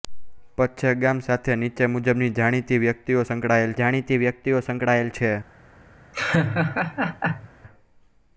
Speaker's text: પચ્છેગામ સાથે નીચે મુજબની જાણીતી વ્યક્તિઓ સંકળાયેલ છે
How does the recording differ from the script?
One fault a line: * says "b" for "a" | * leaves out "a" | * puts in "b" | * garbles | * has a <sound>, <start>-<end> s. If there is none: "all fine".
* puts in "જાણીતી વ્યક્તિઓ સંકળાયેલ"
* has a laugh, 6.1-7.5 s